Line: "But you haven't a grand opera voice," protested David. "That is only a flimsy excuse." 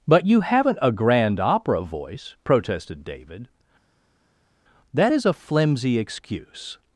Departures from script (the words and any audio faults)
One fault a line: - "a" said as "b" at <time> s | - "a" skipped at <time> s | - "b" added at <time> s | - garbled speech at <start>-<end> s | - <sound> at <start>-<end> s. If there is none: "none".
- "only" skipped at 5.2 s